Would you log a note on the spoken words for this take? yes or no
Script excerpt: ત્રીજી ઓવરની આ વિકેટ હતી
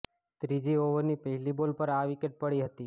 yes